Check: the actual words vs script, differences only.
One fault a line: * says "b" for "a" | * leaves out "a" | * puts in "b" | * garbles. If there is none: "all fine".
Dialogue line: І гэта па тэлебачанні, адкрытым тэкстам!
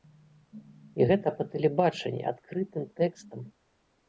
all fine